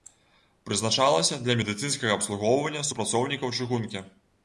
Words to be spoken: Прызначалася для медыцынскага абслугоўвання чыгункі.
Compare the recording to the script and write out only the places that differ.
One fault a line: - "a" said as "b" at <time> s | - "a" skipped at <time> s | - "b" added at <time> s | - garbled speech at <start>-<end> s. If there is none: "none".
- "супрацоўнікаў" added at 2.9 s